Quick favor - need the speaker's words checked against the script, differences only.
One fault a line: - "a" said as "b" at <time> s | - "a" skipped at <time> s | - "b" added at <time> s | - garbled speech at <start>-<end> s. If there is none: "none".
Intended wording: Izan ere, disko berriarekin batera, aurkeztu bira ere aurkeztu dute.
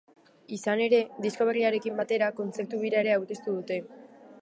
- "aurkeztu" said as "kontzertu" at 2.4 s